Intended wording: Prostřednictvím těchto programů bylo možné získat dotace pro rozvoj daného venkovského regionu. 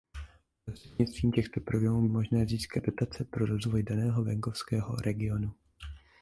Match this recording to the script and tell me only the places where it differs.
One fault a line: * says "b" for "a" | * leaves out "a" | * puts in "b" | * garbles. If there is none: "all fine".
* leaves out "bylo"